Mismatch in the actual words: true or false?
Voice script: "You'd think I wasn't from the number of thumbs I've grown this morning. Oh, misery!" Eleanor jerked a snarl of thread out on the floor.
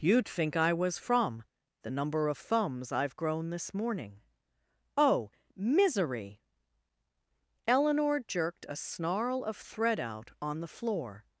true